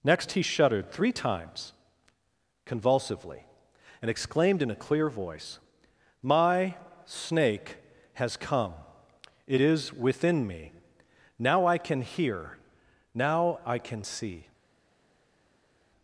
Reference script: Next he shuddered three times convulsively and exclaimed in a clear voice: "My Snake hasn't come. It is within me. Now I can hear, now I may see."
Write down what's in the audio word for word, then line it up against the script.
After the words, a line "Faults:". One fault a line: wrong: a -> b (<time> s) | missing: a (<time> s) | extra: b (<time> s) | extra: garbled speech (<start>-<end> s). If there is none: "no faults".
Next he shuddered three times convulsively and exclaimed in a clear voice: "My Snake has come. It is within me. Now I can hear, now I can see."
Faults:
wrong: hasn't -> has (8.1 s)
wrong: may -> can (13.8 s)